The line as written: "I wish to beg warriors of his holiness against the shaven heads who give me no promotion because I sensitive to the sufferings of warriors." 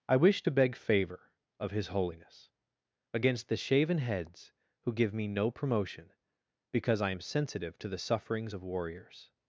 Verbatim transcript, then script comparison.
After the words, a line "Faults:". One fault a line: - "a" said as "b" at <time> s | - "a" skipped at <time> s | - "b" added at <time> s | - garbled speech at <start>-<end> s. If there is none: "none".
"I wish to beg favor of his holiness against the shaven heads who give me no promotion because I am sensitive to the sufferings of warriors."
Faults:
- "warriors" said as "favor" at 0.7 s
- "am" added at 7.1 s